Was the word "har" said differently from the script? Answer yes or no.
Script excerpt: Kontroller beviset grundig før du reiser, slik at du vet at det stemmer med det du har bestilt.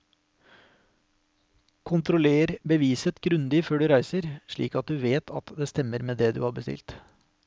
no